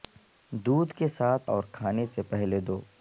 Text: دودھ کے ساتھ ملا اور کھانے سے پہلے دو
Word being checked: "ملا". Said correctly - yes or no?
no